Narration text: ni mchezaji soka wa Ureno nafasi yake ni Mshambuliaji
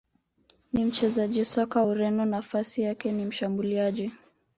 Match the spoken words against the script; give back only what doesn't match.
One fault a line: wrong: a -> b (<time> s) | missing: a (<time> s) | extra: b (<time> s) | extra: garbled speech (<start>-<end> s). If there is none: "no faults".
missing: wa (1.8 s)